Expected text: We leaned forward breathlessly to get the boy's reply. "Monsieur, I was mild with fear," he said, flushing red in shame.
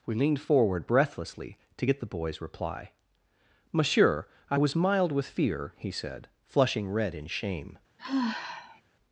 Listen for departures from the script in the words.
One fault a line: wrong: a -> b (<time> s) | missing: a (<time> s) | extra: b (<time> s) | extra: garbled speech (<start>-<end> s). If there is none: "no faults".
no faults